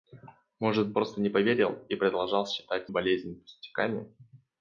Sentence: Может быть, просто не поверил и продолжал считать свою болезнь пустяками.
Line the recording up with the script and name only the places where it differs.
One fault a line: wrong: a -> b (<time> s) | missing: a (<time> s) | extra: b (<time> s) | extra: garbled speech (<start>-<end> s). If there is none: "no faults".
missing: быть (0.9 s)
missing: свою (2.9 s)